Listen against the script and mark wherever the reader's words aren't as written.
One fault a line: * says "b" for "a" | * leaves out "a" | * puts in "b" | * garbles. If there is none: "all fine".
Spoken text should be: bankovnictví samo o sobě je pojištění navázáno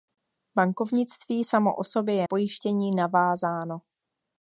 all fine